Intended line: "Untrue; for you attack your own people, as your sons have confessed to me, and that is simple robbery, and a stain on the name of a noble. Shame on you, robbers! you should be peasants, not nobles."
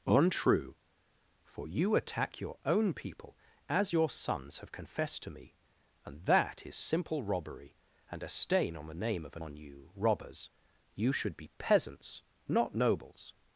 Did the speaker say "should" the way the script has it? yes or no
yes